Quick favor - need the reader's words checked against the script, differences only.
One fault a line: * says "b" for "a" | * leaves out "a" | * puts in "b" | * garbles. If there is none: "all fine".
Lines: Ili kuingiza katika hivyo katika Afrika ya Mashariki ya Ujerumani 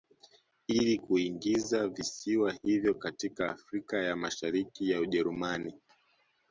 * says "visiwa" for "katika"